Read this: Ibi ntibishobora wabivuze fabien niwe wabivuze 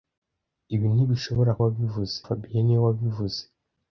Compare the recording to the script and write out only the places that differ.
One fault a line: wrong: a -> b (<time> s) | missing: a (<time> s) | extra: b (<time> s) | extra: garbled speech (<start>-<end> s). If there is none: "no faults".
no faults